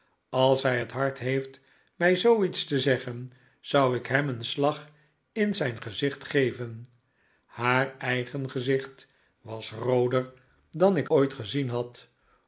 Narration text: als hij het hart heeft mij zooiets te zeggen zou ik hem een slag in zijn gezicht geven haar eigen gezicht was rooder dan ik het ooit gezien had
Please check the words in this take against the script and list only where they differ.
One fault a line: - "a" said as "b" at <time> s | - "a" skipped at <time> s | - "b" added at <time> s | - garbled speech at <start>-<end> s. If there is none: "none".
- "het" skipped at 11.1 s